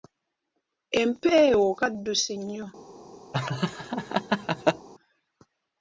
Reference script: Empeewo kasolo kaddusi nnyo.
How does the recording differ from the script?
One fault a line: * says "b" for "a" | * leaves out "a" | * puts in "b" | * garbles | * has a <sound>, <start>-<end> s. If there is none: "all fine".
* leaves out "kasolo"
* has a laugh, 3.3-4.9 s